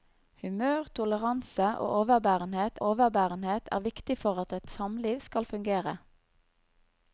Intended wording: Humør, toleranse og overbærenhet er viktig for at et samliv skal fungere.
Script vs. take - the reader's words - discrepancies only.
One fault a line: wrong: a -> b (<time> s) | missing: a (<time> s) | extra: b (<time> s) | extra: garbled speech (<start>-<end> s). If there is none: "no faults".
extra: overbærenhet (2.9 s)